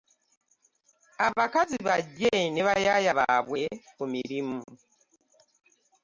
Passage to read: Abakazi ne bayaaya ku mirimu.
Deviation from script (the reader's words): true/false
true